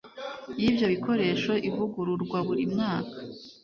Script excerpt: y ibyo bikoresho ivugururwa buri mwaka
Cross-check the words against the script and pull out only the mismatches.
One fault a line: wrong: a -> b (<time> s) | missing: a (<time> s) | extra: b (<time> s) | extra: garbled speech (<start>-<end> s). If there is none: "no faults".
no faults